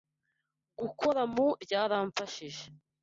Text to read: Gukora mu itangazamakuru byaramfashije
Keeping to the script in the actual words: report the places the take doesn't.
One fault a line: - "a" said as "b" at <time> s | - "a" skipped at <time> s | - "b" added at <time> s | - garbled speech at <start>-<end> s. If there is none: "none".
- "itangazamakuru" skipped at 1.5 s